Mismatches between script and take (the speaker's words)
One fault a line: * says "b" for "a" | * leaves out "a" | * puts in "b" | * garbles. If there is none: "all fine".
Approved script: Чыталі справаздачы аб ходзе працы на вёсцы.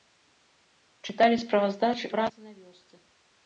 * leaves out "аб ходзе"